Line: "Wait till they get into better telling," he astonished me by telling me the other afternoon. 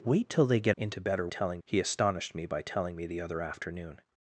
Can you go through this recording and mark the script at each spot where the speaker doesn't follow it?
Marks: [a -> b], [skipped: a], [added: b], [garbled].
"Wait till they get into better telling," he astonished me by telling me the other afternoon.